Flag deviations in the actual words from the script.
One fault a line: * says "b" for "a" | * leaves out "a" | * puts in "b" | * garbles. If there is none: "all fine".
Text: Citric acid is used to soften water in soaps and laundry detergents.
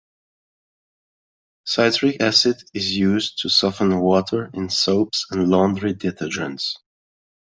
all fine